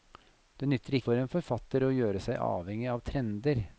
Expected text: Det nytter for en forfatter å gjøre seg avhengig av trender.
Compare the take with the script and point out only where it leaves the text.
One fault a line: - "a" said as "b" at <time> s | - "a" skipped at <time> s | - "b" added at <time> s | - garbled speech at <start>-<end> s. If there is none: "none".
none